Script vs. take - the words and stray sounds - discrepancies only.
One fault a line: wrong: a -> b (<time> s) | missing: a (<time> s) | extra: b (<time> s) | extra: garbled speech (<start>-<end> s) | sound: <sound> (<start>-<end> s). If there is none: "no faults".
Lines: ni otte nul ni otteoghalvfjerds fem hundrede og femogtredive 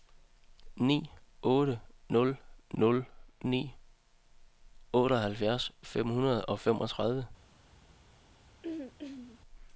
extra: nul (2.8 s)
sound: throat clearing (8.6-9.4 s)